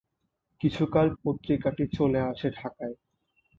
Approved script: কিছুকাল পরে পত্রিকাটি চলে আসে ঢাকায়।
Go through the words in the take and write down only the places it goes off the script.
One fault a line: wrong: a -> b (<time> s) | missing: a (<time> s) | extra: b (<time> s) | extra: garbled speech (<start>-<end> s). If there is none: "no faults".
missing: পরে (1.1 s)